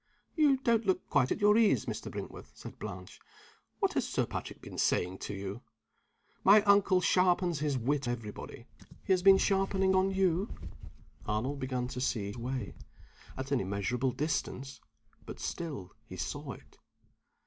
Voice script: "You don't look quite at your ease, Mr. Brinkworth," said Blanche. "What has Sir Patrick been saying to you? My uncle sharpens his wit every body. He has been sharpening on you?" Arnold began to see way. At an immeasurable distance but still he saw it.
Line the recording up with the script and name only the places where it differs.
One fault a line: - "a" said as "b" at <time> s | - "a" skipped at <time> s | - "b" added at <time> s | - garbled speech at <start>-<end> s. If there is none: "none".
none